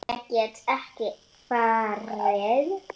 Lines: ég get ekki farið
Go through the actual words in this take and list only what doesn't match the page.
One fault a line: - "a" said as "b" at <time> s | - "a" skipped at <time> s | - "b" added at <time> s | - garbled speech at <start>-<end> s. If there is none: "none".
none